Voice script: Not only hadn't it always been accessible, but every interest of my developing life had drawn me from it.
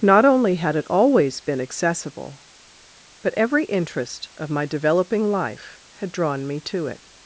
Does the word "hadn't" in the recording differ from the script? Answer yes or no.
yes